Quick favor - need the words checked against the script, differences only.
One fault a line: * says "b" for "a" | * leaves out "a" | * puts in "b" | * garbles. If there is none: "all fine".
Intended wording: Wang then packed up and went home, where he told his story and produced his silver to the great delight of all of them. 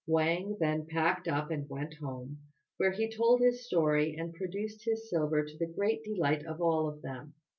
all fine